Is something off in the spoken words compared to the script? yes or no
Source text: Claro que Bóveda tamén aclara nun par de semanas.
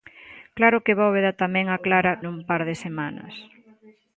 no